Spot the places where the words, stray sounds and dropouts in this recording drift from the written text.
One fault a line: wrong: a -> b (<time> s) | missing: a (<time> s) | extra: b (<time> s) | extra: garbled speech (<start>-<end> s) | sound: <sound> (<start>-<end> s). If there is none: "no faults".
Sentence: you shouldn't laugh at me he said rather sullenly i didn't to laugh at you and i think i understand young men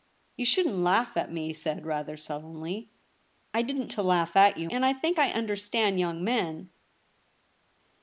no faults